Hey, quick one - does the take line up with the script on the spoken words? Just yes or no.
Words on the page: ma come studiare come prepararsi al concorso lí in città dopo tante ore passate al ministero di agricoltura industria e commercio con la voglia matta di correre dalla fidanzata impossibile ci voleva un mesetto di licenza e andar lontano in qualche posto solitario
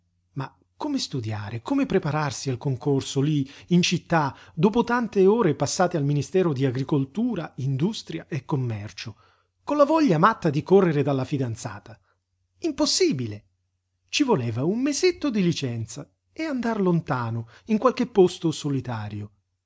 yes